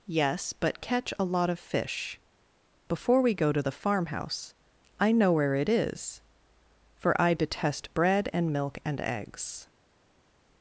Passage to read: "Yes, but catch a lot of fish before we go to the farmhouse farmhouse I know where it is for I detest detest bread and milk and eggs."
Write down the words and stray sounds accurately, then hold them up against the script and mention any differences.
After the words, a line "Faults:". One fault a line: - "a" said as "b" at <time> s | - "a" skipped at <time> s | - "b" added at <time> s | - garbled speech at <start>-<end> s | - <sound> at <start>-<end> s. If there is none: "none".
"Yes, but catch a lot of fish before we go to the farmhouse I know where it is for I detest bread and milk and eggs."
Faults:
- "farmhouse" skipped at 4.5 s
- "detest" skipped at 7.9 s